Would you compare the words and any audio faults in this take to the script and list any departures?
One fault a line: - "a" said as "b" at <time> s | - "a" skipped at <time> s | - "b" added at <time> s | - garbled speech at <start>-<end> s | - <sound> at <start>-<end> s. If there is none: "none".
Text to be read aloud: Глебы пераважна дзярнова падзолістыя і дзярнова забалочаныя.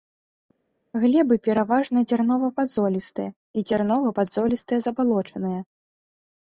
- "падзолістыя" added at 4.2 s